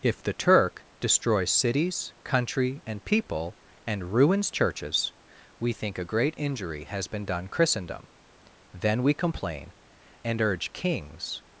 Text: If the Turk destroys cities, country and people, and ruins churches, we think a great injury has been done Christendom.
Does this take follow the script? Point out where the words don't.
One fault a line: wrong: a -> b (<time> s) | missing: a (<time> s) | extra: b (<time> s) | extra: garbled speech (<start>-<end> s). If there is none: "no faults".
extra: Then we complain and urge kings (8.7 s)